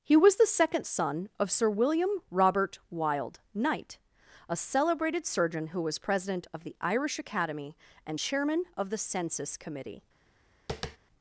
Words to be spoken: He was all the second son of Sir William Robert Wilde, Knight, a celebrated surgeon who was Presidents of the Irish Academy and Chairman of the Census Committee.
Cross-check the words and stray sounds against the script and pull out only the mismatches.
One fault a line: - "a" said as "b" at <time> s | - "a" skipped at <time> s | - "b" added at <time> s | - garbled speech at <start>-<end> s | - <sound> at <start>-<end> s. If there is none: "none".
- "all" skipped at 0.4 s
- "Presidents" said as "President" at 6.0 s
- tap at 10.7-11.0 s